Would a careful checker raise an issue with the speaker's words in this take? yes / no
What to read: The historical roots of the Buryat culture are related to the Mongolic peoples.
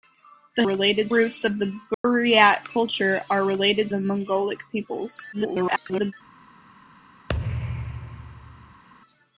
yes